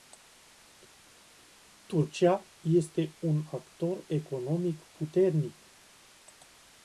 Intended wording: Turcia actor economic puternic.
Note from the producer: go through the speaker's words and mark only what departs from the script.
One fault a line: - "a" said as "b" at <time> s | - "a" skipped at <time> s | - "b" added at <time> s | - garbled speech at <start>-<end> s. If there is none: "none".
- "este un" added at 2.6 s